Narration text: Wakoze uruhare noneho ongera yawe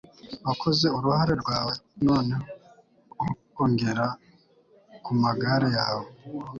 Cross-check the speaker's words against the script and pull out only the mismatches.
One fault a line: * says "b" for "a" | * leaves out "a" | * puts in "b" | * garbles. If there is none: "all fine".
* puts in "rwawe"
* puts in "kumagare"